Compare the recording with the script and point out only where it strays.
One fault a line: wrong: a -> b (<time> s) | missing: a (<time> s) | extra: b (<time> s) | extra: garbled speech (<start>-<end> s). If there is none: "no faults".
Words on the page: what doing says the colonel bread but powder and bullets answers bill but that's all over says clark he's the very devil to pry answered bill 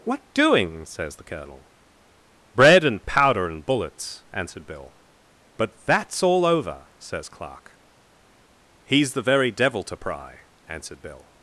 wrong: but -> and (2.8 s)
wrong: answers -> answered (4.3 s)